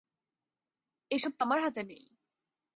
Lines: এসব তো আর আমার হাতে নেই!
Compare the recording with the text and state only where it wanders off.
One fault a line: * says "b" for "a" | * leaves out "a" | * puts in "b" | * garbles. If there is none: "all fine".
* leaves out "আর"